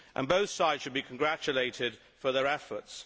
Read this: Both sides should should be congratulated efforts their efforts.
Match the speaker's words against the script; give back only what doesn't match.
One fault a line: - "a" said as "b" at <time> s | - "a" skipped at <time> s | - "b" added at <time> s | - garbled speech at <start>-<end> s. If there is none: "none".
- "should" skipped at 0.9 s
- "efforts" said as "for" at 2.2 s